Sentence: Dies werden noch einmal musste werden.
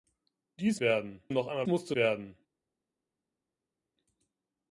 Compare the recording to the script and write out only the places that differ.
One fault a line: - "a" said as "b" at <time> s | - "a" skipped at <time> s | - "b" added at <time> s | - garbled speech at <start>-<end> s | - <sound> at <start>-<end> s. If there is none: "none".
none